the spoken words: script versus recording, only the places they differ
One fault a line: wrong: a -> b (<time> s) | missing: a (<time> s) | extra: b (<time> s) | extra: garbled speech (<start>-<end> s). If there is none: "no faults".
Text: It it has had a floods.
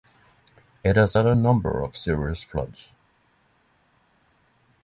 missing: it (0.9 s)
extra: number of serious (1.3 s)